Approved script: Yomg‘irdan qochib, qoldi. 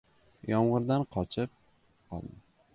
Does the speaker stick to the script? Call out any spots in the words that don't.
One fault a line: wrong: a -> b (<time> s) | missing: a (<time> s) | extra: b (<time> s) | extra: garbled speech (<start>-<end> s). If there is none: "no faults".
no faults